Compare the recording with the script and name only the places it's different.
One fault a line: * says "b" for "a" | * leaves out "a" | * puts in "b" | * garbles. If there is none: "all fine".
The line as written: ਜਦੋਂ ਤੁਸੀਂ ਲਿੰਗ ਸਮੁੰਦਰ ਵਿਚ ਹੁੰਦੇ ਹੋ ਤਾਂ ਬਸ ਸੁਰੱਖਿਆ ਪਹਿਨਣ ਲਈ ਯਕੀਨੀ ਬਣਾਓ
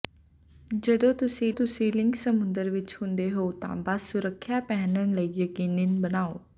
* puts in "ਤੁਸੀਂ"